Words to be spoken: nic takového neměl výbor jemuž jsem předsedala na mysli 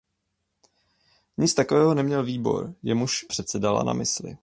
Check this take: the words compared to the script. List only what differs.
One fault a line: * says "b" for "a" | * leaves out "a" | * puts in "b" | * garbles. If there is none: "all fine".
* leaves out "jsem"